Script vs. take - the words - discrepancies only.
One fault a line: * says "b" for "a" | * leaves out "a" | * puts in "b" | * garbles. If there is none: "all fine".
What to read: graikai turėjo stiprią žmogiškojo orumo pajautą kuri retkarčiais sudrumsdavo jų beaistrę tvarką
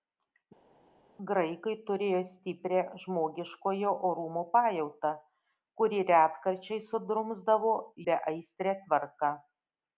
* leaves out "jų"